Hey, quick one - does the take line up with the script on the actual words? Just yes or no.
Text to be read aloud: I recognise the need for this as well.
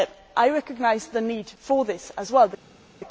yes